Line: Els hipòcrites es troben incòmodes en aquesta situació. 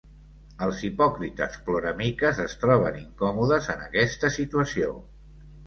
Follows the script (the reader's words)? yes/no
no